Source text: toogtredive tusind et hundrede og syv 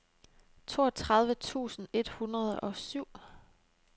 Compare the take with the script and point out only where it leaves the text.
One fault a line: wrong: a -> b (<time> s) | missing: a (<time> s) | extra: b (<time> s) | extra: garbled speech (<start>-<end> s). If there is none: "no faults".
no faults